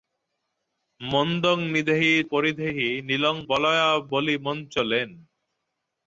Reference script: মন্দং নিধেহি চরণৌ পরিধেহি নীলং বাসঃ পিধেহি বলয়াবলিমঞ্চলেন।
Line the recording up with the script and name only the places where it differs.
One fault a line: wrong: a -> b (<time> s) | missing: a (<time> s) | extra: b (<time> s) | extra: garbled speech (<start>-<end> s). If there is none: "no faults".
missing: চরণৌ (2.1 s)
missing: বাসঃ পিধেহি (3.4 s)